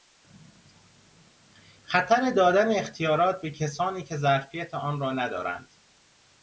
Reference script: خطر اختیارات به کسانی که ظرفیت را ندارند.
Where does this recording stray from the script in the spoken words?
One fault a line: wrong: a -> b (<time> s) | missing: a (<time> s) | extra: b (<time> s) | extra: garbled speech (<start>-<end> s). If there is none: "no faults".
extra: دادن (2.3 s)
extra: آن (4.7 s)